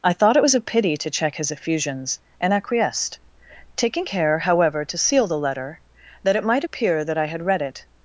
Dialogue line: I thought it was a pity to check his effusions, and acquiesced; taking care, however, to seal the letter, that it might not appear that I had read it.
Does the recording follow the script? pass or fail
fail